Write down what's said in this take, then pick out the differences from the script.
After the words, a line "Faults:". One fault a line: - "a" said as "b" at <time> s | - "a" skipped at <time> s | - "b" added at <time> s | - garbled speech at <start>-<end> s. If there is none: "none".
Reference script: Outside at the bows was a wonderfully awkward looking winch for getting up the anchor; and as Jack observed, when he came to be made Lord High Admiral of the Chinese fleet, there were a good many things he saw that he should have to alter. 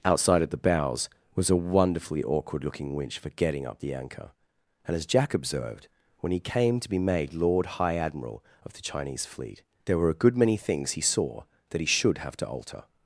Outside at the bows was a wonderfully awkward looking winch for getting up the anchor; and as Jack observed, when he came to be made Lord High Admiral of the Chinese fleet, there were a good many things he saw that he should have to alter.
Faults:
none